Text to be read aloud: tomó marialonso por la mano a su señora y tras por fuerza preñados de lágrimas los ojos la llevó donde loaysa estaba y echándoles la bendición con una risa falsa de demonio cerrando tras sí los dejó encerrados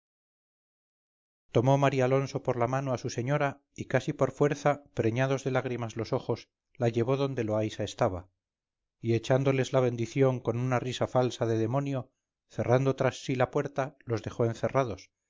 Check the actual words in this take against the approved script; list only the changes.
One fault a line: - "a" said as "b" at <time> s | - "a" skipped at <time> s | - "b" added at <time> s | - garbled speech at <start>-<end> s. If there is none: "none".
- "tras" said as "casi" at 3.9 s
- "la puerta" added at 13.4 s